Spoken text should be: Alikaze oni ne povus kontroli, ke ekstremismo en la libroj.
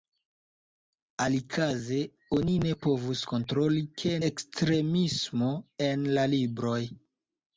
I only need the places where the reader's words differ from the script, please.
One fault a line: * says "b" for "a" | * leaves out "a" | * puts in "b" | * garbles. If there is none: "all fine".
all fine